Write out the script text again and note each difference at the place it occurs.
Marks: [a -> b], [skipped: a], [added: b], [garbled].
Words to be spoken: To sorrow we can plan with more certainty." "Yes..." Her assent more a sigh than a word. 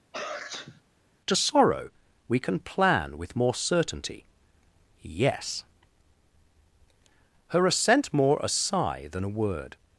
To sorrow we can plan with more certainty." "Yes..." Her assent more a sigh than a word.